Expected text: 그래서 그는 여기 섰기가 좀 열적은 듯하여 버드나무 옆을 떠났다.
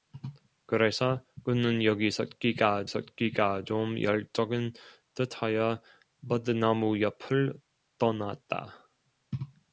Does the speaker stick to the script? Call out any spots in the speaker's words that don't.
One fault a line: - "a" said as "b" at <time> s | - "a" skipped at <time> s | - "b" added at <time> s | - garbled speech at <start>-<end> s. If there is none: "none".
- "섰기가" added at 2.8 s